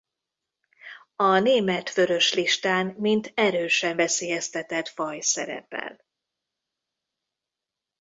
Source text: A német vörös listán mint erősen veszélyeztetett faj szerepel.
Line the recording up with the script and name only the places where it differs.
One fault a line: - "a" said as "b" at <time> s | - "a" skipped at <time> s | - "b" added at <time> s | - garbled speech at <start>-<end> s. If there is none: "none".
none